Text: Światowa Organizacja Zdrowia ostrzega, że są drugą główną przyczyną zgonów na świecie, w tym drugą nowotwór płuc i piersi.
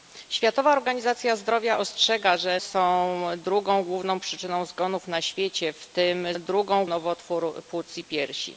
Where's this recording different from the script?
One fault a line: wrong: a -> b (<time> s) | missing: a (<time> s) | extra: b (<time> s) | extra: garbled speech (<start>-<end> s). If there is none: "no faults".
no faults